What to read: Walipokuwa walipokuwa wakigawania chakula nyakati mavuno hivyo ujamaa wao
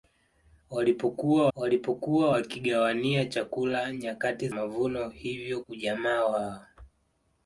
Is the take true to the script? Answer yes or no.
yes